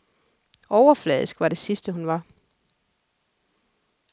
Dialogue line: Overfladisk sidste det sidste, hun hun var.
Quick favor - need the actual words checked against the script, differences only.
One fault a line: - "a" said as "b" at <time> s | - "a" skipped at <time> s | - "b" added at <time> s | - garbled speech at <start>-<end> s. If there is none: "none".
- "sidste" said as "var" at 1.4 s
- "hun" skipped at 2.1 s